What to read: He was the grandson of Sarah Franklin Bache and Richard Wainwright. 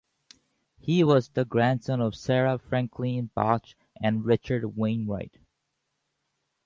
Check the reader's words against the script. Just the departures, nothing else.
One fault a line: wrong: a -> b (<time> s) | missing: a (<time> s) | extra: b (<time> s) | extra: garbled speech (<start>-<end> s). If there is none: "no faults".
no faults